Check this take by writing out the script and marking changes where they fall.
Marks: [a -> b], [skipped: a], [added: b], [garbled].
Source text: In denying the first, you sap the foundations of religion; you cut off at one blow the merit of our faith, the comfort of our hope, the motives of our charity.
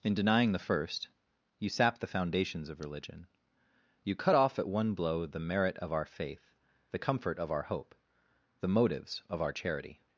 In denying the first, you sap the foundations of religion; you cut off at one blow the merit of our faith, the comfort of our hope, the motives of our charity.